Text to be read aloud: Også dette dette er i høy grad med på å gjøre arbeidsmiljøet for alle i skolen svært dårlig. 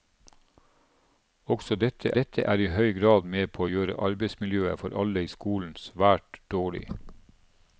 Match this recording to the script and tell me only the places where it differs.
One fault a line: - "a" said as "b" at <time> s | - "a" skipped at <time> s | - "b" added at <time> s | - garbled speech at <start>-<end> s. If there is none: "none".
none